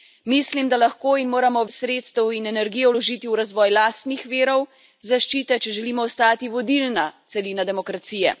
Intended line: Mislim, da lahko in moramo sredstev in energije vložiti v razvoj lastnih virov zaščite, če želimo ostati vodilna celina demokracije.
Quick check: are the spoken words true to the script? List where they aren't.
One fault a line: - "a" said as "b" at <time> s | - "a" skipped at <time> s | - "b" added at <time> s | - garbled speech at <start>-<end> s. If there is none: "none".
none